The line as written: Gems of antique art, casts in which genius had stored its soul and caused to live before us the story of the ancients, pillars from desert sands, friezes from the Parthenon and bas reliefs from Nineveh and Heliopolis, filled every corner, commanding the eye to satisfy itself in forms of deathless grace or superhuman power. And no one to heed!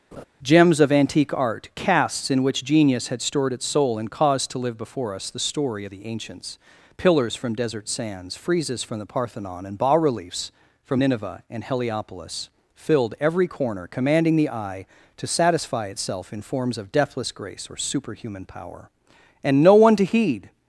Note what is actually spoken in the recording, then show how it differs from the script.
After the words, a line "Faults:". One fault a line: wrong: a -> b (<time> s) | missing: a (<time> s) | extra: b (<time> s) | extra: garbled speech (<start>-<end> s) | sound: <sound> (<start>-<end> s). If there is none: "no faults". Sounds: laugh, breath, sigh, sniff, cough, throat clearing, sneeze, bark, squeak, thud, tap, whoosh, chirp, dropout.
Gems of antique art, casts in which genius had stored its soul and caused to live before us the story of the ancients, pillars from desert sands, friezes from the Parthenon and bas reliefs from Nineveh and Heliopolis, filled every corner, commanding the eye to satisfy itself in forms of deathless grace or superhuman power. And no one to heed!
Faults:
sound: laugh (0.1-0.2 s)